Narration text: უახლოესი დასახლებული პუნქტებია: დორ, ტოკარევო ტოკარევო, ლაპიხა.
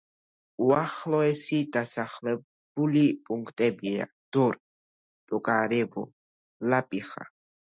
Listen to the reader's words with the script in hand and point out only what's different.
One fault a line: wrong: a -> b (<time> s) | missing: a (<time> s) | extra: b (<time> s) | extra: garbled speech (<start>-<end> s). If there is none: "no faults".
missing: ტოკარევო (6.0 s)